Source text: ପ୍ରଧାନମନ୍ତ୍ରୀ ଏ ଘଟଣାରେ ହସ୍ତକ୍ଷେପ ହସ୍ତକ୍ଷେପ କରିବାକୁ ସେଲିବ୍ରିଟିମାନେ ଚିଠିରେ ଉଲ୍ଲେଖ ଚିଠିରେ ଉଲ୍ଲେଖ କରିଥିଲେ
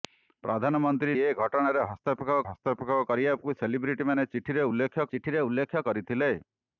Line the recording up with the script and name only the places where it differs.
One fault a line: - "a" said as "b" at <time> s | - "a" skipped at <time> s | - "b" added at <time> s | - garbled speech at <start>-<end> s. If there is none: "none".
none